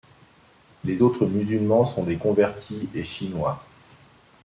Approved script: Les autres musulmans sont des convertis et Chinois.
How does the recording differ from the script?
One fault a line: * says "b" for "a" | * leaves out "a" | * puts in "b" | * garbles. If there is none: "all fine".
all fine